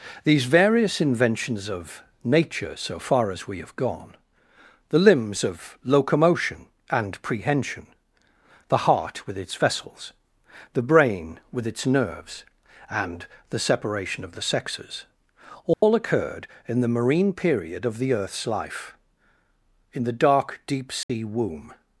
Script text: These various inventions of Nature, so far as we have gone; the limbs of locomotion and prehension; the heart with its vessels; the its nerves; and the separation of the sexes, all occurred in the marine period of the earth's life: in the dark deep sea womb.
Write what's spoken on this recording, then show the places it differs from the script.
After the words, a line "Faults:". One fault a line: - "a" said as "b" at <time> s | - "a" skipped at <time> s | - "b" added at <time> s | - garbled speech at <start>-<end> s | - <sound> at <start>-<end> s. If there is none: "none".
These various inventions of Nature, so far as we have gone; the limbs of locomotion and prehension; the heart with its vessels; the brain with its nerves; and the separation of the sexes, all occurred in the marine period of the earth's life: in the dark deep sea womb.
Faults:
- "brain with" added at 10.8 s
- dropout at 15.7-15.8 s
- dropout at 21.0-21.1 s